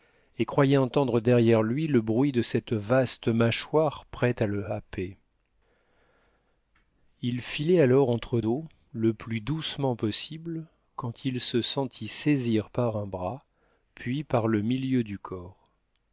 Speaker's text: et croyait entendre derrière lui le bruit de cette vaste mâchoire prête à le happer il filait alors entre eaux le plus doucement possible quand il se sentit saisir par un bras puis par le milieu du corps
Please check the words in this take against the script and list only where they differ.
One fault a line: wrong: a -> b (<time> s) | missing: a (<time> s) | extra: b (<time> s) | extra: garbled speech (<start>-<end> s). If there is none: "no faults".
no faults